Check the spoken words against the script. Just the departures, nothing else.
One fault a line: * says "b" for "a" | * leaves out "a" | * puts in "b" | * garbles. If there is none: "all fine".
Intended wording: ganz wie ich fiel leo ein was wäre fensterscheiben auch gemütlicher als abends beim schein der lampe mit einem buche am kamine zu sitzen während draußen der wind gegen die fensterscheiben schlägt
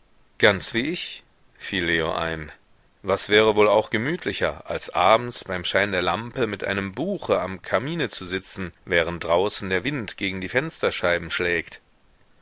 * says "wohl" for "fensterscheiben"